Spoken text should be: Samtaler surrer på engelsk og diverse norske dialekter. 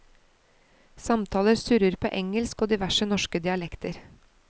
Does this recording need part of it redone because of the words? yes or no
no